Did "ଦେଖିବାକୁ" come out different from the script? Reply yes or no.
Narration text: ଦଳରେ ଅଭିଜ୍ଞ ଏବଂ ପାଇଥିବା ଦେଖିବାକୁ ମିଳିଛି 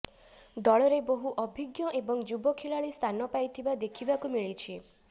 no